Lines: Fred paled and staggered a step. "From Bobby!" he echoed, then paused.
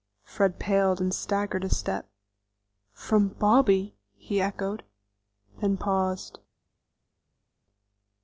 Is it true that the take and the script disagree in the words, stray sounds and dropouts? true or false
false